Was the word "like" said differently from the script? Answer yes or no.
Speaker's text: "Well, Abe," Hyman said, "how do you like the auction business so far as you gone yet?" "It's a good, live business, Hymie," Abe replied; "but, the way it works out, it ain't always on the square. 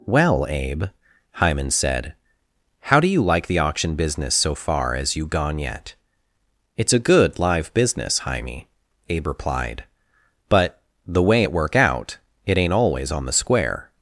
no